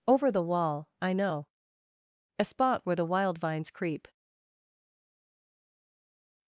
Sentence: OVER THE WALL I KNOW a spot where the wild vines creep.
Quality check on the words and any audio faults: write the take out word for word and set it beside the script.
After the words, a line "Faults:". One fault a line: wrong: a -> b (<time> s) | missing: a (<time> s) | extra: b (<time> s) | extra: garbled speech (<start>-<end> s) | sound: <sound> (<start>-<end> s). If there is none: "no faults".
OVER THE WALL I KNOW a spot where the wild vines creep.
Faults:
no faults